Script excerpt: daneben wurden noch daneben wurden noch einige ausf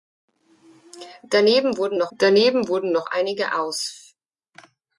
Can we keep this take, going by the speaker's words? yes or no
yes